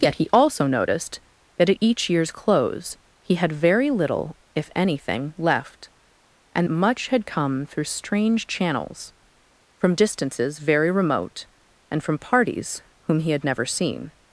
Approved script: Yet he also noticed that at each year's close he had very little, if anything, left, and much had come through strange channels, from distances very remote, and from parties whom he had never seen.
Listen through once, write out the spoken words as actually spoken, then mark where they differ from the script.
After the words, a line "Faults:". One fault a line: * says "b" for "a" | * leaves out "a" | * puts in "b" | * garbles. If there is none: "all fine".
Yet he also noticed that at each year's close he had very little, if anything, left, and much had come through strange channels, from distances very remote, and from parties whom he had never seen.
Faults:
all fine